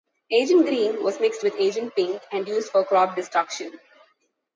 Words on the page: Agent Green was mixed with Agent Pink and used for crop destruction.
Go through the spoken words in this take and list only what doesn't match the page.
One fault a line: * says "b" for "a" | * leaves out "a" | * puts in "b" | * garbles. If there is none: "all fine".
all fine